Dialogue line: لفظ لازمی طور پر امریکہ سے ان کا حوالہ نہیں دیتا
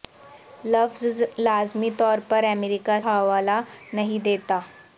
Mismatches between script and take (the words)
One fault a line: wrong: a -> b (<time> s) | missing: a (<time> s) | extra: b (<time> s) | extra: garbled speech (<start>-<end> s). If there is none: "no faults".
missing: سے ان کا (3.0 s)